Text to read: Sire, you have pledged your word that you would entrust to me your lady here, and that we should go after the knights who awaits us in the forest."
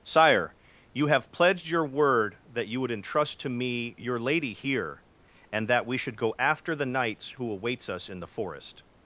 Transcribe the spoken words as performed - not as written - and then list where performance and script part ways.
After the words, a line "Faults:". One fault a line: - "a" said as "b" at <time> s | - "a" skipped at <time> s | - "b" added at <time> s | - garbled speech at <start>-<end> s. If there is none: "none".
Sire, you have pledged your word that you would entrust to me your lady here, and that we should go after the knights who awaits us in the forest."
Faults:
none